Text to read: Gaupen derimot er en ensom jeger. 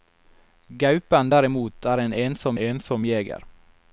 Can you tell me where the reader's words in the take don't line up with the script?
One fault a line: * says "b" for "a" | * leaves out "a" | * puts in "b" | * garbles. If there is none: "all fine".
* puts in "ensom"